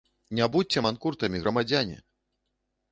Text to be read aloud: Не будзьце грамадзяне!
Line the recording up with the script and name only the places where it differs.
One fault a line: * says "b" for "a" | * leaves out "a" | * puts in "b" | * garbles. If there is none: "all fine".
* puts in "манкуртамі"